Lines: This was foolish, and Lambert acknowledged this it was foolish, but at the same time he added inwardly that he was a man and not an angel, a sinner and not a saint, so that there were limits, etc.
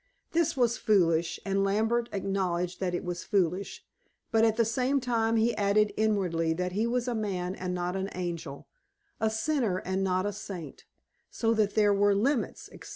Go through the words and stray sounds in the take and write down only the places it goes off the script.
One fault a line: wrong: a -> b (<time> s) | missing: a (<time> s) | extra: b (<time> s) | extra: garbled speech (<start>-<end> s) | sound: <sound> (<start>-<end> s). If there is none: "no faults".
wrong: this -> that (2.8 s)